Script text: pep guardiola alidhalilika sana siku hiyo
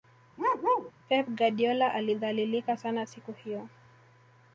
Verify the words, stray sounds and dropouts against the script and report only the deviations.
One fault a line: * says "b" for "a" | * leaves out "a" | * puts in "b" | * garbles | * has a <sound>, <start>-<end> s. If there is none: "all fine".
* has a bark, 0.4-0.9 s